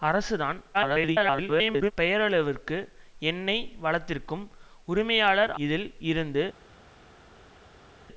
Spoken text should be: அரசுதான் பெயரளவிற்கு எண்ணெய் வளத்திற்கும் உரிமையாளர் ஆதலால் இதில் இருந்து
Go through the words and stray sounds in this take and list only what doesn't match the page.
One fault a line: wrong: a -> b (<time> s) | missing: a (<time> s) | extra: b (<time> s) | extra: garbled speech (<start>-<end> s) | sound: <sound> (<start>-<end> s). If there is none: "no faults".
extra: garbled speech (0.7-1.9 s)
missing: ஆதலால் (5.5 s)